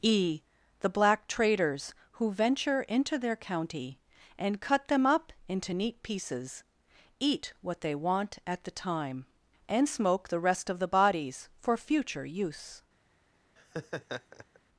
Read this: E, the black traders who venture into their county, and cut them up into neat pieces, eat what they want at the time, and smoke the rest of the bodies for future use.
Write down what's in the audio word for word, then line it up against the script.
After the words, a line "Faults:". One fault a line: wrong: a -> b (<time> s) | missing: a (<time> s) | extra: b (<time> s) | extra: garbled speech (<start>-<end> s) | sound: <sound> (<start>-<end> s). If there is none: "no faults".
E, the black traders who venture into their county, and cut them up into neat pieces, eat what they want at the time, and smoke the rest of the bodies for future use.
Faults:
sound: laugh (13.6-14.6 s)